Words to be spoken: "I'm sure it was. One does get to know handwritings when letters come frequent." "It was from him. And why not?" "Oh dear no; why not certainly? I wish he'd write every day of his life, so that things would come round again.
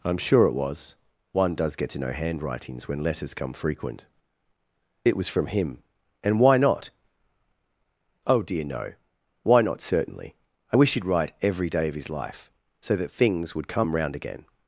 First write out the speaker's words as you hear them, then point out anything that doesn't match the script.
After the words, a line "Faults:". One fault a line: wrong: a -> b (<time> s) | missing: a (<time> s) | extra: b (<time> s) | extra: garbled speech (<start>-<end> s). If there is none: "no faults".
"I'm sure it was. One does get to know handwritings when letters come frequent." "It was from him. And why not?" "Oh dear no; why not certainly? I wish he'd write every day of his life, so that things would come round again.
Faults:
no faults